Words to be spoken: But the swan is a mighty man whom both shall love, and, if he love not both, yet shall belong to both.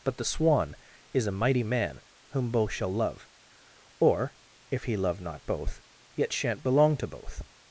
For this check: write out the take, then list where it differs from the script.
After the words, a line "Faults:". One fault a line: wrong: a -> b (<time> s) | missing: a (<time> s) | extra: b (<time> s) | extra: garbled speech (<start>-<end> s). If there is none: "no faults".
But the swan is a mighty man whom both shall love, or, if he love not both, yet shan't belong to both.
Faults:
wrong: and -> or (4.0 s)
wrong: shall -> shan't (6.3 s)